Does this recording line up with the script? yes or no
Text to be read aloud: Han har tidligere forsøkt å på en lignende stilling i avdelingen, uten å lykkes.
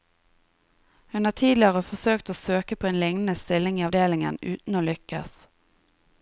no